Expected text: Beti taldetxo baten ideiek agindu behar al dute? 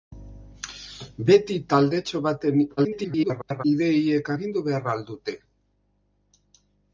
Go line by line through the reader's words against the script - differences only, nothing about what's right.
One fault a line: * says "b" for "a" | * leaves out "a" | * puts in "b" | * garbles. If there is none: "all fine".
* garbles